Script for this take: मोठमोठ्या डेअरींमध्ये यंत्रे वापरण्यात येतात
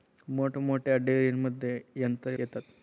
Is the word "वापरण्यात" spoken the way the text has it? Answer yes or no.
no